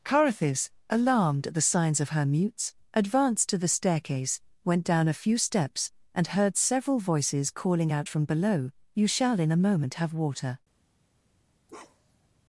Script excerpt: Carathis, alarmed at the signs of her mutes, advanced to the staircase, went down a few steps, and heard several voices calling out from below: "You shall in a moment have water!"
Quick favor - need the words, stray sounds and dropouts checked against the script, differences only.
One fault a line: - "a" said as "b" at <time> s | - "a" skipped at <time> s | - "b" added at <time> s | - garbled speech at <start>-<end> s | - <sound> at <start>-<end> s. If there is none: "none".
- bark at 11.7-12.3 s